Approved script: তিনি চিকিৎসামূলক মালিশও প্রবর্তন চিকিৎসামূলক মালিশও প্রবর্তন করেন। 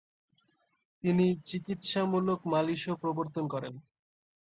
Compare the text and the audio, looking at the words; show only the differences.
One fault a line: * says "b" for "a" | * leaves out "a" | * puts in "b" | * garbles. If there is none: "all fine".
* leaves out "চিকিৎসামূলক মালিশও প্রবর্তন"